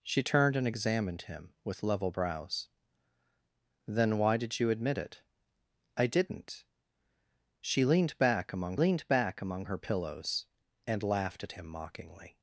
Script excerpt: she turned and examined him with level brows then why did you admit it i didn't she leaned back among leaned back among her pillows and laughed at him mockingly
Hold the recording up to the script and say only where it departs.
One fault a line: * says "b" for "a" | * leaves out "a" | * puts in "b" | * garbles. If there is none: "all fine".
all fine